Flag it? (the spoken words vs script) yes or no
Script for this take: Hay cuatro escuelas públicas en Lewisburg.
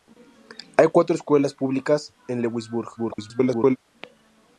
yes